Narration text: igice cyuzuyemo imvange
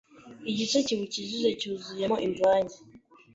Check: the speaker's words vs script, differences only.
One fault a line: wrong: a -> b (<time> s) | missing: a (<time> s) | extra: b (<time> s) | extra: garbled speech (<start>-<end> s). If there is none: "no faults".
extra: kiwukikije (0.9 s)